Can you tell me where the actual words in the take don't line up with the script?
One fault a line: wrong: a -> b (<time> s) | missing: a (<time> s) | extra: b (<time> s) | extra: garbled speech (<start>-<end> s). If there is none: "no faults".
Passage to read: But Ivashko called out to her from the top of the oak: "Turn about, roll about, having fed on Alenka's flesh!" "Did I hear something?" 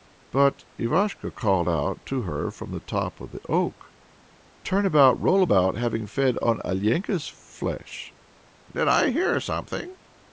no faults